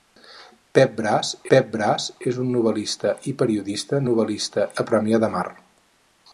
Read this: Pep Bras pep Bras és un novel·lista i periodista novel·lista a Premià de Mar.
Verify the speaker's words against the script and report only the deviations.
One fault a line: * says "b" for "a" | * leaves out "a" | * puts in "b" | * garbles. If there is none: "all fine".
all fine